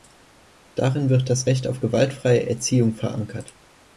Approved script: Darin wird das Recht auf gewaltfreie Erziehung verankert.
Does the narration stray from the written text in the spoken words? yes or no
no